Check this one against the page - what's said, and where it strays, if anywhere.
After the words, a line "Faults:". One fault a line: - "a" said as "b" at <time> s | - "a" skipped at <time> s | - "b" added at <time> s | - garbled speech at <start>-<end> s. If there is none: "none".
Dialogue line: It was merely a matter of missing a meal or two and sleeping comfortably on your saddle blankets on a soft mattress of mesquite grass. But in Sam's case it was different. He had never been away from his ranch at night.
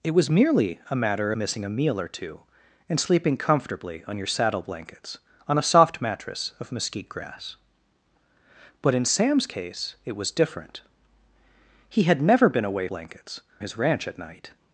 It was merely a matter missing a meal or two and sleeping comfortably on your saddle blankets on a soft mattress of mesquite grass. But in Sam's case it was different. He had never been away blankets his ranch at night.
Faults:
- "of" skipped at 1.3 s
- "from" said as "blankets" at 12.8 s